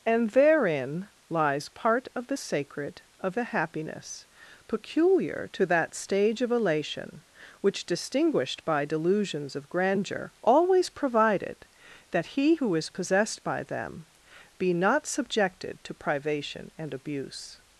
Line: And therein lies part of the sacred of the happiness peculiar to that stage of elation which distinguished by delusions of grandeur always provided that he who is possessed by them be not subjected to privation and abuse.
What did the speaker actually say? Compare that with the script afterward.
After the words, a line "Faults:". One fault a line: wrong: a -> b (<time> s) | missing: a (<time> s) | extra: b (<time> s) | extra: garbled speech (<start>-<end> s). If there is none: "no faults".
And therein lies part of the sacred of the happiness peculiar to that stage of elation which distinguished by delusions of grandeur always provided that he who is possessed by them be not subjected to privation and abuse.
Faults:
no faults